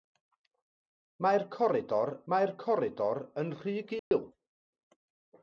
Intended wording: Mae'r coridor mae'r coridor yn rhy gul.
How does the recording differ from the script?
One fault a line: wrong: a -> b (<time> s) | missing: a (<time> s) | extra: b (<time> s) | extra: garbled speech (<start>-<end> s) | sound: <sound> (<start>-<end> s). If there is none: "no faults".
sound: dropout (4.0-4.1 s)